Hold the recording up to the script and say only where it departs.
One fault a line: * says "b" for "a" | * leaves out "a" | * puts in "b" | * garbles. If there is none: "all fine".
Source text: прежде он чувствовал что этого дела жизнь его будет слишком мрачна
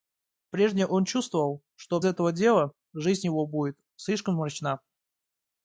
all fine